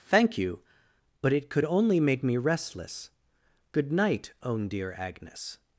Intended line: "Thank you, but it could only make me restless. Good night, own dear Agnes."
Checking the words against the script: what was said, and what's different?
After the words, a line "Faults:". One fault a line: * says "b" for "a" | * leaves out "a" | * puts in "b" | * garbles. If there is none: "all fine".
"Thank you, but it could only make me restless. Good night, own dear Agnes."
Faults:
all fine